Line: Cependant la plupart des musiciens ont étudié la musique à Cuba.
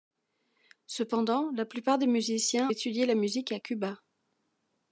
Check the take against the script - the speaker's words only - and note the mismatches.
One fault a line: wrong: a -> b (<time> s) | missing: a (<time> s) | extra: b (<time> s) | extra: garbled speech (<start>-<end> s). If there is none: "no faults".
missing: ont (2.7 s)